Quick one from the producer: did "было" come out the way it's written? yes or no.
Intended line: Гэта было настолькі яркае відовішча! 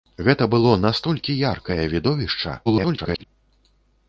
yes